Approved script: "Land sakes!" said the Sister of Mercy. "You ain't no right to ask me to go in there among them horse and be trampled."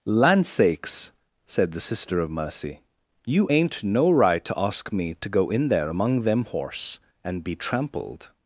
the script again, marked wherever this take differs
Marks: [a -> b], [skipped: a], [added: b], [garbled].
"Land sakes!" said the Sister of Mercy. "You ain't no right to ask me to go in there among them horse and be trampled."